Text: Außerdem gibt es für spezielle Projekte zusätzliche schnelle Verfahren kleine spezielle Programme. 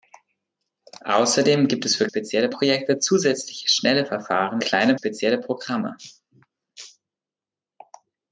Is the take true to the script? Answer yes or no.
yes